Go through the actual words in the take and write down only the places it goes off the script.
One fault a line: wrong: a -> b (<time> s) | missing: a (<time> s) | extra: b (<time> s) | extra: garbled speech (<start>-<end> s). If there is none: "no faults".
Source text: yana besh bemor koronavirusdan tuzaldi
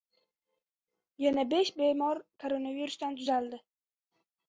no faults